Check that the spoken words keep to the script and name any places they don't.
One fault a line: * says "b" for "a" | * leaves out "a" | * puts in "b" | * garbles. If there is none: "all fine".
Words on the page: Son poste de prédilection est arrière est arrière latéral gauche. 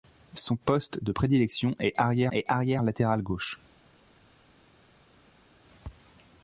all fine